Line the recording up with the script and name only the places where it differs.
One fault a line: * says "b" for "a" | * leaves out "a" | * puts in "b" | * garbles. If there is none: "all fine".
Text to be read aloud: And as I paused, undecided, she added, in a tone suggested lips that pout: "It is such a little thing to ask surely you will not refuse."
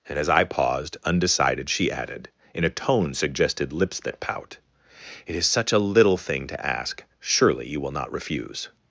all fine